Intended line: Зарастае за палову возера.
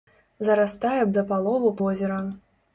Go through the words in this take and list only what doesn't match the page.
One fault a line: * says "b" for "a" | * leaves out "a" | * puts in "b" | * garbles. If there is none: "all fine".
all fine